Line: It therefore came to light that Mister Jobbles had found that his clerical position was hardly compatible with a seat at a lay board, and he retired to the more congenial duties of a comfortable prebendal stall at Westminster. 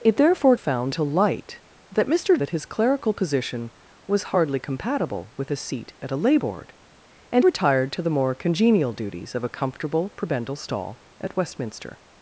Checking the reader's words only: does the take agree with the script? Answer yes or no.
no